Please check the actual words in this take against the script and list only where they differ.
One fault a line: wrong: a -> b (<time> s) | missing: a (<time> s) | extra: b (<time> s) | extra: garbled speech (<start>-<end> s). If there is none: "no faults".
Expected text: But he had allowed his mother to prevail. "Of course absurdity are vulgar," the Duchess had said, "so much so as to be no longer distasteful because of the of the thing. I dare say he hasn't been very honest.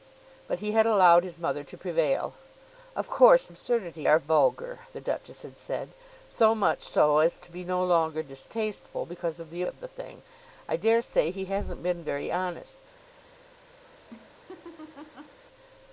no faults